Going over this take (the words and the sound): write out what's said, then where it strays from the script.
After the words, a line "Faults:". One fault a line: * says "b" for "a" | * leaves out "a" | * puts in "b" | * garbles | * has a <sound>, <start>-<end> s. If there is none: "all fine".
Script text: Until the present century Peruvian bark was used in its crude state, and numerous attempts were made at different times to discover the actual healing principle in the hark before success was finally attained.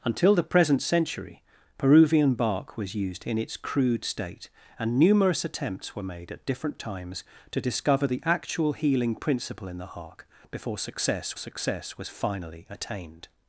Until the present century Peruvian bark was used in its crude state, and numerous attempts were made at different times to discover the actual healing principle in the hark before success success was finally attained.
Faults:
* puts in "success"